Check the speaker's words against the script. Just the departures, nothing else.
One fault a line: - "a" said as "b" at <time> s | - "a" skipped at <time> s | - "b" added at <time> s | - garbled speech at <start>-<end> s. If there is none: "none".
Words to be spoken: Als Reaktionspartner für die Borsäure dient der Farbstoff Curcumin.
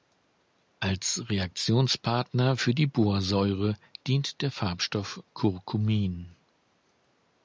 none